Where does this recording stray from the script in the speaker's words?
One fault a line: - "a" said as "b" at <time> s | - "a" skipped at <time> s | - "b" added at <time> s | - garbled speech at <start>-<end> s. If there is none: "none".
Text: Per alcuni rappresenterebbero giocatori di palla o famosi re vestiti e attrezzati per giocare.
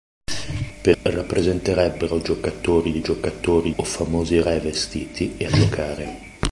- "alcuni" skipped at 1.0 s
- "palla" said as "giocatori" at 3.0 s
- "attrezzati per" skipped at 5.5 s